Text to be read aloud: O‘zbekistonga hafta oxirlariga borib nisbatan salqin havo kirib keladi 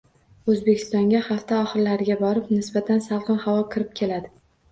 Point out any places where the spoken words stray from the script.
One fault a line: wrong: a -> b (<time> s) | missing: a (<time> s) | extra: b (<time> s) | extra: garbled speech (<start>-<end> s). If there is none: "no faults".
no faults